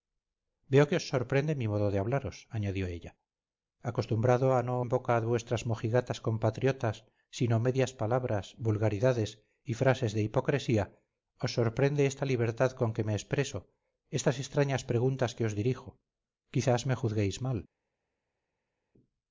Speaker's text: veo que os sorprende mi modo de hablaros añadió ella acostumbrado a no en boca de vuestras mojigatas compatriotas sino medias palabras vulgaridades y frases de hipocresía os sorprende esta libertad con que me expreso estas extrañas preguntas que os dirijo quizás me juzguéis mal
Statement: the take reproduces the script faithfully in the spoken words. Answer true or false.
true